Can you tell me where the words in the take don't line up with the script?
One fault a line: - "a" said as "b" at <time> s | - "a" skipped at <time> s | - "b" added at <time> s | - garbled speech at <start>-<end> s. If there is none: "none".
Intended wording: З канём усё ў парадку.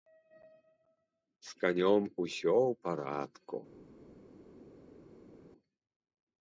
none